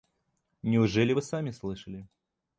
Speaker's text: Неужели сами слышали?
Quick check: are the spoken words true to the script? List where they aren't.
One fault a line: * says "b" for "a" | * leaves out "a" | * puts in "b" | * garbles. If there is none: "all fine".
* puts in "вы"